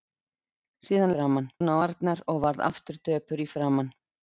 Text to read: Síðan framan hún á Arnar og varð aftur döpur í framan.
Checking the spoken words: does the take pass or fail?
pass